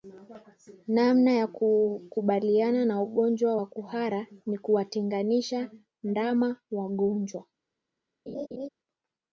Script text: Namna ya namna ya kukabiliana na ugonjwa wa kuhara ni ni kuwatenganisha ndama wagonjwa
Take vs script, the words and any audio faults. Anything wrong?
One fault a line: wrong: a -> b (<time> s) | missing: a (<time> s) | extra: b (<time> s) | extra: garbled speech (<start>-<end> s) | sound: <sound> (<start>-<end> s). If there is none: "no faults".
missing: namna ya (1.5 s)
missing: ni (4.6 s)
sound: laugh (8.3-8.7 s)